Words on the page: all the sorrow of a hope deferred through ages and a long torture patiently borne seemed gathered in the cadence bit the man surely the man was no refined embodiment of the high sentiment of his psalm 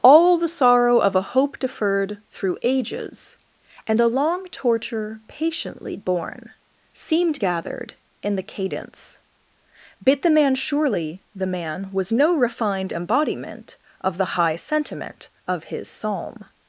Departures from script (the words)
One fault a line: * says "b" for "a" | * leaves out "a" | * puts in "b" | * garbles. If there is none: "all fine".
all fine